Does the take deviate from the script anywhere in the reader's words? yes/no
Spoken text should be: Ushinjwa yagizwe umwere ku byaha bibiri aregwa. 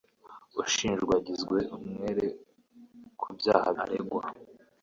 yes